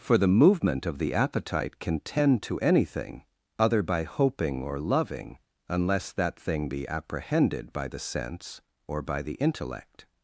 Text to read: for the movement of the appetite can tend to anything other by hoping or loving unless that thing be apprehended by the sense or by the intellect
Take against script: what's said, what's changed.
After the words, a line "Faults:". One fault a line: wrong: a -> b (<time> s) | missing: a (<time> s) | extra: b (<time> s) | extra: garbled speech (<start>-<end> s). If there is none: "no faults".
for the movement of the appetite can tend to anything other by hoping or loving unless that thing be apprehended by the sense or by the intellect
Faults:
no faults